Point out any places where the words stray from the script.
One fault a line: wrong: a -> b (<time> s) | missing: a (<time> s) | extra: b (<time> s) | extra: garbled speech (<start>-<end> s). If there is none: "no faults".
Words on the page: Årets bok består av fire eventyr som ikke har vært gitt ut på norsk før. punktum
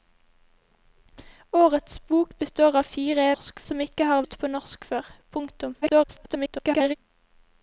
wrong: eventyr -> norsk (3.3 s)
missing: vært gitt (4.2 s)
extra: garbled speech (5.8-7.0 s)